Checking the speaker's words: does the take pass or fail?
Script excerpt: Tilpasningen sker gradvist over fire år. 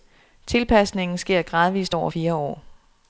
pass